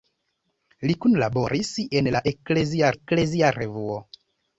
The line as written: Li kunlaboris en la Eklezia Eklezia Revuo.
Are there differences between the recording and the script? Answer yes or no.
no